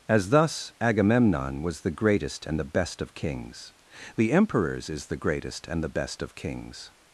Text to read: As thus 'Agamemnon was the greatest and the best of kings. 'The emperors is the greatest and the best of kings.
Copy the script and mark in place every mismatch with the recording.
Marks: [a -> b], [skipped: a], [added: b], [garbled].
As thus 'Agamemnon was the greatest and the best of kings. 'The emperors is the greatest and the best of kings.